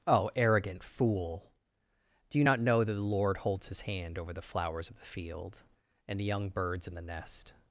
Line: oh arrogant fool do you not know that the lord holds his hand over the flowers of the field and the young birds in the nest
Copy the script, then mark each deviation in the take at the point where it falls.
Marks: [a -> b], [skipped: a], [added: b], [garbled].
oh arrogant fool do you not know that the lord holds his hand over the flowers of the field and the young birds in the nest